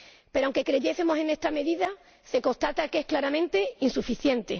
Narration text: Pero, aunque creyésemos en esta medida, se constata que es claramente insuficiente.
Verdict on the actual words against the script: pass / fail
pass